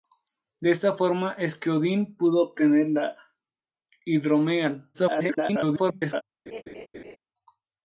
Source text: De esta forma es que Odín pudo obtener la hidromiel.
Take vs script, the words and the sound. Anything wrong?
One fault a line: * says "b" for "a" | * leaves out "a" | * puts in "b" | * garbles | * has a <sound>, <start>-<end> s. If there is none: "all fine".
* garbles
* has a laugh, 6.5-7.2 s